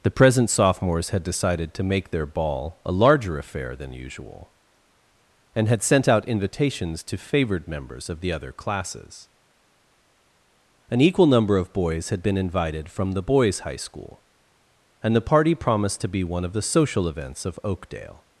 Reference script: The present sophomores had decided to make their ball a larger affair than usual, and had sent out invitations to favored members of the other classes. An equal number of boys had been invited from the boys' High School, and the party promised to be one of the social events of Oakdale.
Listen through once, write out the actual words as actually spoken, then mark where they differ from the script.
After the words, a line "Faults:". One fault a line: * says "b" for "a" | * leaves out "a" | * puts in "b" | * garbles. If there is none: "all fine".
The present sophomores had decided to make their ball a larger affair than usual, and had sent out invitations to favored members of the other classes. An equal number of boys had been invited from the boys' High School, and the party promised to be one of the social events of Oakdale.
Faults:
all fine